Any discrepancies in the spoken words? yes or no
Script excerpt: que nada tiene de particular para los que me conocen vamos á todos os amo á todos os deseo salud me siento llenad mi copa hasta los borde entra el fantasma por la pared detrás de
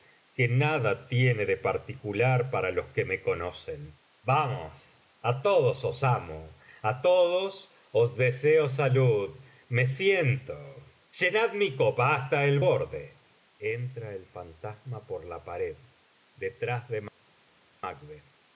yes